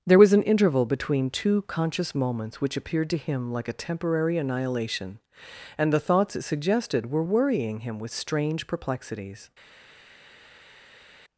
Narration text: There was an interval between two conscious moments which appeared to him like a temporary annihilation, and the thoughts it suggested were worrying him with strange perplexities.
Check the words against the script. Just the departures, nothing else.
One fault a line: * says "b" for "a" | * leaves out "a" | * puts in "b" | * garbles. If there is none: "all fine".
all fine